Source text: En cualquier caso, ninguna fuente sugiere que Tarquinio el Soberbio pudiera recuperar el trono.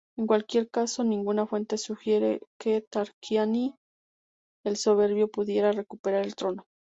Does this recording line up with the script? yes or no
yes